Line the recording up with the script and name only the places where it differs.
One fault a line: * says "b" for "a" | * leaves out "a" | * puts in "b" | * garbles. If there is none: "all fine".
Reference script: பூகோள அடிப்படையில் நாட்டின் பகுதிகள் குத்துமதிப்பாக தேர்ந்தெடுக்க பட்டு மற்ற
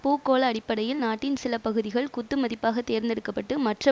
* puts in "சில"